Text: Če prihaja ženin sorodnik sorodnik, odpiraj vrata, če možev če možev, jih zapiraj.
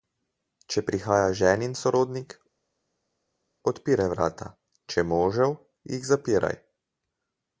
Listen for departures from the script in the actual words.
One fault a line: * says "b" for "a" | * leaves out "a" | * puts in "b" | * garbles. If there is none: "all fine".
* leaves out "sorodnik"
* leaves out "če možev"